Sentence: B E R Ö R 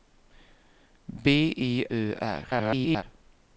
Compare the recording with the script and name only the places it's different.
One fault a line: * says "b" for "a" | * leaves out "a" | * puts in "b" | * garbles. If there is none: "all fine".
* leaves out "R"
* garbles